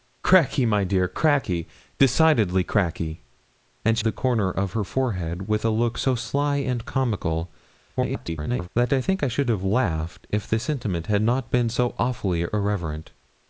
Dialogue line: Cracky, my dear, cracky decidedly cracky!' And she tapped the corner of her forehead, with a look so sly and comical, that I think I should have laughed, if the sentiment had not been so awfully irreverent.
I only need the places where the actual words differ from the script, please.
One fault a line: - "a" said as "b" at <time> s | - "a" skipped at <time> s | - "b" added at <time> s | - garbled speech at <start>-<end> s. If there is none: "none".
- "she tapped" skipped at 4.0 s
- garbled speech at 8.0-8.7 s